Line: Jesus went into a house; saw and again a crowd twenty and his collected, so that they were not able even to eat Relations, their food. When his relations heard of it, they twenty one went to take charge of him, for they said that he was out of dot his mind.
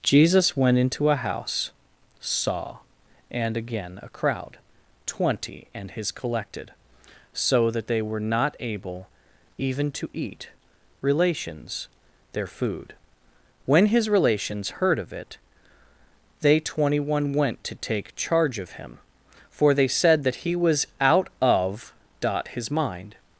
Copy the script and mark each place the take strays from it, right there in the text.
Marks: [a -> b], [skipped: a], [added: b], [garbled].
Jesus went into a house; saw and again a crowd twenty and his collected, so that they were not able even to eat Relations, their food. When his relations heard of it, they twenty one went to take charge of him, for they said that he was out of dot his mind.